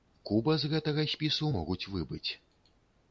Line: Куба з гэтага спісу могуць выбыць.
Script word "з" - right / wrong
right